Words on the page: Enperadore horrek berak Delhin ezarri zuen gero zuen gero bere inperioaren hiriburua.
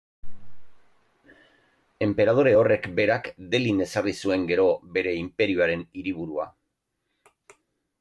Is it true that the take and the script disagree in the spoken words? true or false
true